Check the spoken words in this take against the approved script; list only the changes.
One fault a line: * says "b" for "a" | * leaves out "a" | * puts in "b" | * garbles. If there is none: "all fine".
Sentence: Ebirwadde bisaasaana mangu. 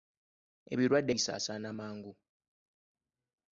all fine